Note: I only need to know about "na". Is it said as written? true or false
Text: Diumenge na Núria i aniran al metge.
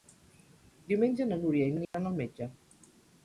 true